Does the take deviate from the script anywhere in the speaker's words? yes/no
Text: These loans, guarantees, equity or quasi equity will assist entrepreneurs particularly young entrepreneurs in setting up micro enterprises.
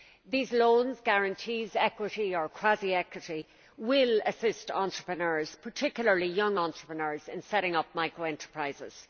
no